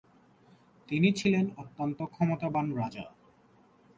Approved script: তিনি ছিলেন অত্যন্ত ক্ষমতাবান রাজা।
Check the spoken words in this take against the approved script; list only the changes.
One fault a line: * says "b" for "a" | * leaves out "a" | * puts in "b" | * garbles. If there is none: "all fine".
all fine